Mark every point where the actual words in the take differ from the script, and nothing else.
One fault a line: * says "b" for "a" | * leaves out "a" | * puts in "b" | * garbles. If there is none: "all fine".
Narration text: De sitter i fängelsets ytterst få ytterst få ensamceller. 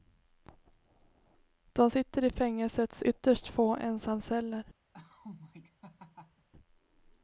* leaves out "ytterst få"